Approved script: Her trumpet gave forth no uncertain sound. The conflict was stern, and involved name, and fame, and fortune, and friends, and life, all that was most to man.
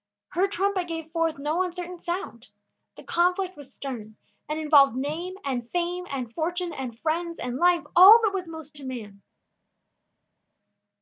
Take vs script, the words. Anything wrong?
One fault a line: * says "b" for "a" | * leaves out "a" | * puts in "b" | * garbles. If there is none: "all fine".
all fine